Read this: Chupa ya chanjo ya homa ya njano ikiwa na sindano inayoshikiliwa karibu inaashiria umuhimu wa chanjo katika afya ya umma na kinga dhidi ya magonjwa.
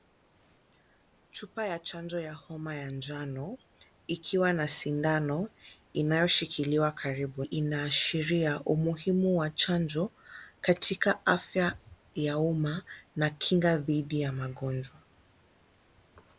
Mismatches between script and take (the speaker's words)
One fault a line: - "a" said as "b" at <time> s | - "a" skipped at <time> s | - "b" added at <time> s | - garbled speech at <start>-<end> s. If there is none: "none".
none